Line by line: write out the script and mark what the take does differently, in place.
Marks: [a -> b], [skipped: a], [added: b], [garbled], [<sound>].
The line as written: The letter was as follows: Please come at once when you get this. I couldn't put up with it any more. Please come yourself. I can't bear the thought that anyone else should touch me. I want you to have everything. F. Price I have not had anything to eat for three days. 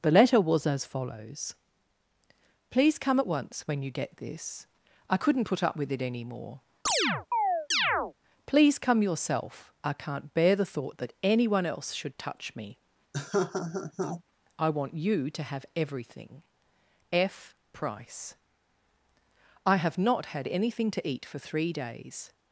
The letter was as follows: Please come at once when you get this. I couldn't put up with it any more. [chirp] Please come yourself. I can't bear the thought that anyone else should touch me. [laugh] I want you to have everything. F. Price I have not had anything to eat for three days.